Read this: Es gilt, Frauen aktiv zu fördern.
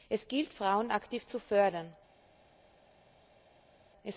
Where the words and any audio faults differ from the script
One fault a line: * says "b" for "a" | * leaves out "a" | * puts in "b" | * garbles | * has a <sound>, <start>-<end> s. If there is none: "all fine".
all fine